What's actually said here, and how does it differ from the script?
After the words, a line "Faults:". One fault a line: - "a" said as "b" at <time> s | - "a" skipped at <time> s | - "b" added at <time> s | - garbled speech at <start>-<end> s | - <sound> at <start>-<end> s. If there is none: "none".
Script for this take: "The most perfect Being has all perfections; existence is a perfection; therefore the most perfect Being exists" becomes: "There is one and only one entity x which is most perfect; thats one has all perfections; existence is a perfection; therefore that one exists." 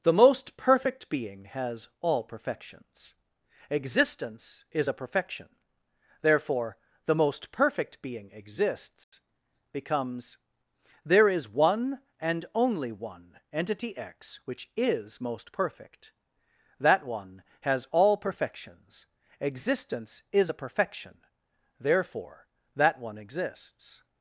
"The most perfect Being has all perfections; existence is a perfection; therefore the most perfect Being exists" becomes: "There is one and only one entity x which is most perfect; that one has all perfections; existence is a perfection; therefore that one exists."
Faults:
- dropout at 9.0-9.1 s
- "thats" said as "that" at 16.8 s